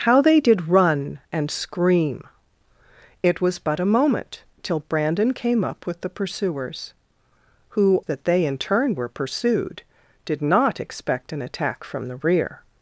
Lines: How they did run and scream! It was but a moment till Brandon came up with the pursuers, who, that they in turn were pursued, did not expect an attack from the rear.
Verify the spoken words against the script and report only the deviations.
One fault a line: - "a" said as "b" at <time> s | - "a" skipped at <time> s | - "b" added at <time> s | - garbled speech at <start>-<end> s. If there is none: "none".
none